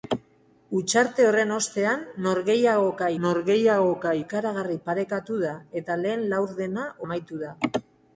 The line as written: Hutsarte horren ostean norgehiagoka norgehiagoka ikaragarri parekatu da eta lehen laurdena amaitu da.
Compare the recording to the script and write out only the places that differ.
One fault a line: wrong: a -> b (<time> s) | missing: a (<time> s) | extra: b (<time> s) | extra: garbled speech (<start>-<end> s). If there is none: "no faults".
no faults